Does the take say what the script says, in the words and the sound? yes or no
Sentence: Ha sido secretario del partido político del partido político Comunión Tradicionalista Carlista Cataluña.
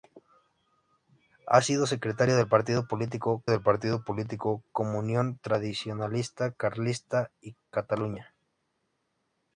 yes